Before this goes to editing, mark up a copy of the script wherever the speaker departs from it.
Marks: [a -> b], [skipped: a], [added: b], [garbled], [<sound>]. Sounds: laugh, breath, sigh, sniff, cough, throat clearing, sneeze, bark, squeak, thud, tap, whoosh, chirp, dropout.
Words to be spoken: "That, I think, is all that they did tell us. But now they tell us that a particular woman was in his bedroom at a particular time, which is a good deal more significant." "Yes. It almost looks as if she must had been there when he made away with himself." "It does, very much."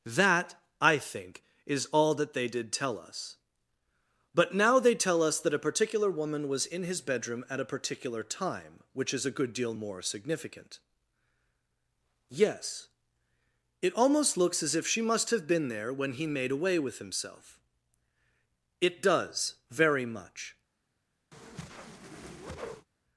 "That, I think, is all that they did tell us. But now they tell us that a particular woman was in his bedroom at a particular time, which is a good deal more significant." "Yes. It almost looks as if she must [had -> have] been there when he made away with himself." "It does, very much." [whoosh]